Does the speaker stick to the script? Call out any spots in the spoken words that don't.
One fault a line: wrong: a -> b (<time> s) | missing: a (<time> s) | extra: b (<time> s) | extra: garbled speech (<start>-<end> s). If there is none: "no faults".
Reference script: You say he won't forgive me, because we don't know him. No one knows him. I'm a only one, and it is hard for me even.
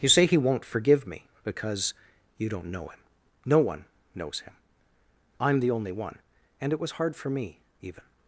wrong: we -> you (2.4 s)
wrong: a -> the (5.6 s)
wrong: is -> was (6.8 s)